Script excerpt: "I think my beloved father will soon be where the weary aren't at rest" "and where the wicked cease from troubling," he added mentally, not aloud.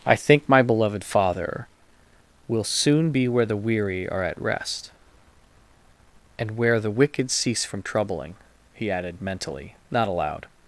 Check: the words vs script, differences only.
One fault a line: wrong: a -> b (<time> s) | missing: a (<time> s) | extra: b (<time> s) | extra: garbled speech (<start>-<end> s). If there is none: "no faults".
wrong: aren't -> are (4.1 s)